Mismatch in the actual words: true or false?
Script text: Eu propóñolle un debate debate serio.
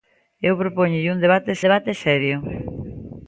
false